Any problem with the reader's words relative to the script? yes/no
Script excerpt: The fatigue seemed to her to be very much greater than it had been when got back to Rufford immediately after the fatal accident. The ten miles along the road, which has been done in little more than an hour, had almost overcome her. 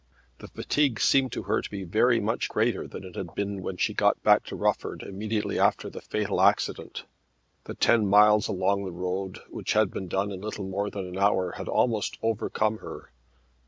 yes